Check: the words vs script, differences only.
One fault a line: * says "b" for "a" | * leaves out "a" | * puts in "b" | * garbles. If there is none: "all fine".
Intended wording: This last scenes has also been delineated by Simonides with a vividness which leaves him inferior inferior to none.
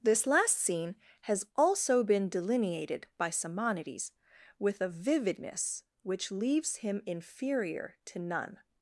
* says "scene" for "scenes"
* leaves out "inferior"